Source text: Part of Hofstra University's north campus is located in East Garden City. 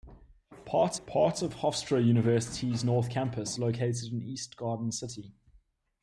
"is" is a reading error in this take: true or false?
true